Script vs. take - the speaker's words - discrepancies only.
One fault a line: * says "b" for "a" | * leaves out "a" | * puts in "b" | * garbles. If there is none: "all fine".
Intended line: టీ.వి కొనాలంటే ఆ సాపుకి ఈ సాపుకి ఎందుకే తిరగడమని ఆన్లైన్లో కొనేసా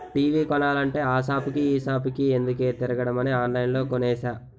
all fine